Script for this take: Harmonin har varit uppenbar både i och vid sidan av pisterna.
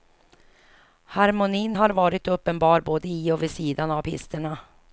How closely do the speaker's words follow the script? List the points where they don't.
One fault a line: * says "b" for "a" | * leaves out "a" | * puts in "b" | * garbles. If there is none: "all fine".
all fine